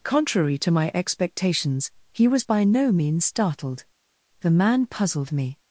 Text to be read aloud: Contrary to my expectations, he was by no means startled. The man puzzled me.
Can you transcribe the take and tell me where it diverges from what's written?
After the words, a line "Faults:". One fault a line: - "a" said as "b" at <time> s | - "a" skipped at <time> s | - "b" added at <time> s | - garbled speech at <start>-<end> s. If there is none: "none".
Contrary to my expectations, he was by no means startled. The man puzzled me.
Faults:
none